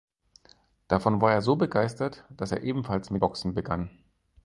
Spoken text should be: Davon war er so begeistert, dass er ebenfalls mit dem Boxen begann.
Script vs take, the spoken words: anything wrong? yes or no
yes